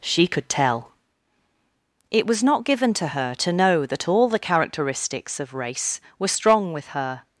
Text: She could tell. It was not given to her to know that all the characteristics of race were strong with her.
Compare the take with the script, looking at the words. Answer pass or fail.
pass